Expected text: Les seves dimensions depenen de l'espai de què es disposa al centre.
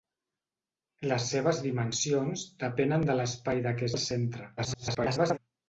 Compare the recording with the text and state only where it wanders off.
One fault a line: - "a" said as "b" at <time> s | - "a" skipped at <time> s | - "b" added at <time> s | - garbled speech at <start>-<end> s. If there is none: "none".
- "es disposa" skipped at 3.9 s
- garbled speech at 4.6-5.4 s